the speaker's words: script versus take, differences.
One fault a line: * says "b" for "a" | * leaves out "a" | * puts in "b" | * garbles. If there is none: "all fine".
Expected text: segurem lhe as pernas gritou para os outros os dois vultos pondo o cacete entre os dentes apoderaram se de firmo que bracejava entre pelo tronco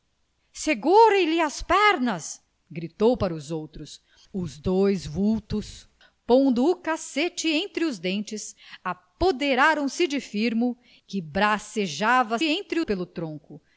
all fine